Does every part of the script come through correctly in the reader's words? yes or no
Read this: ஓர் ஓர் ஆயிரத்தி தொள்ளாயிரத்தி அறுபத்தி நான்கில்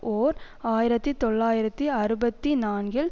no